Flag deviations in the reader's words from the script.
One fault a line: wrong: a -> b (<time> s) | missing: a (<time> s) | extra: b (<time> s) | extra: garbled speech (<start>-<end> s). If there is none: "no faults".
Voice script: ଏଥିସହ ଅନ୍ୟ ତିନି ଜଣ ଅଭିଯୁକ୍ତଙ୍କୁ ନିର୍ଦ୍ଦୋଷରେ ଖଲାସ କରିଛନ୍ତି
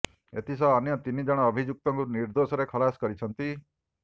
no faults